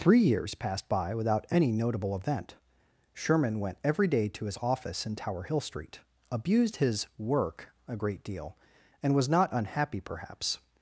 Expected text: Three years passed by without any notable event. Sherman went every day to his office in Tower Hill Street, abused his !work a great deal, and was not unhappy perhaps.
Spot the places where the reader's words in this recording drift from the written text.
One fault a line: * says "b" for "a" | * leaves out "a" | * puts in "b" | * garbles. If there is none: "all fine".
all fine